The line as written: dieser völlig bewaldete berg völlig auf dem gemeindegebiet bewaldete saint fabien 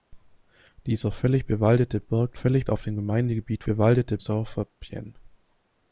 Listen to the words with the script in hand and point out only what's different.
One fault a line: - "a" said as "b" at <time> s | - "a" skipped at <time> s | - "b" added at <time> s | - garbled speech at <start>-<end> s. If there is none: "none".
none